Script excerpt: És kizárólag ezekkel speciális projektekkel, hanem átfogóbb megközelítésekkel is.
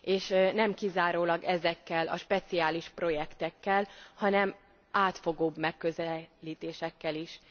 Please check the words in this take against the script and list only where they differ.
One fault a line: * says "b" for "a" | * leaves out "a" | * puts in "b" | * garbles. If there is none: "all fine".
* puts in "nem"
* puts in "a"